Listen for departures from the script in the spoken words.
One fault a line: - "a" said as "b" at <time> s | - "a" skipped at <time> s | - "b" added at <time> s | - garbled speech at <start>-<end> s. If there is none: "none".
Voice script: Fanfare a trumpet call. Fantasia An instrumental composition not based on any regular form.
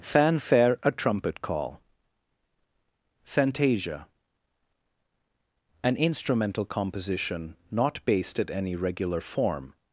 - "on" said as "at" at 8.4 s